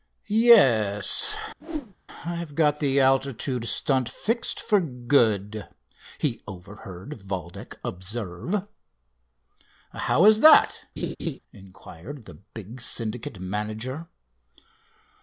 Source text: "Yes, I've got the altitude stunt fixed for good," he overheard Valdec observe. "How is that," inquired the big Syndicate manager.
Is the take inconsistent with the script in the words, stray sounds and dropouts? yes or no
yes